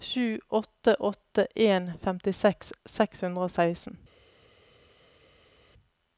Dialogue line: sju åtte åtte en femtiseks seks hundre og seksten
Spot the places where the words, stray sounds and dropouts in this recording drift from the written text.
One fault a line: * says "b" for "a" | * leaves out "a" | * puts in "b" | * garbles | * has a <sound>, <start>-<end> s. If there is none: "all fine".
all fine